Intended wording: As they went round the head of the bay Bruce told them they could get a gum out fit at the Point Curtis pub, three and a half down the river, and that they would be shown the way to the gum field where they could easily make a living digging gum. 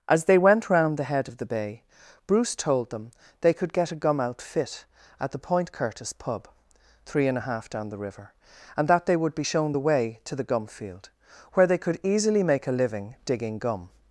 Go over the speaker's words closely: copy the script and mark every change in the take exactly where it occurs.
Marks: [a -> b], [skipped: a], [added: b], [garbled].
As they went round the head of the bay Bruce told them they could get a gum out fit at the Point Curtis pub, three and a half down the river, and that they would be shown the way to the gum field where they could easily make a living digging gum.